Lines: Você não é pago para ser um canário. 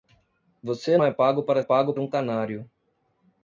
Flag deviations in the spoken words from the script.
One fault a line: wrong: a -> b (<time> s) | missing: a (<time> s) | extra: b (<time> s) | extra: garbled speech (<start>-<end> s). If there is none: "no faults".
missing: não (1.0 s)
wrong: ser -> pago (1.6 s)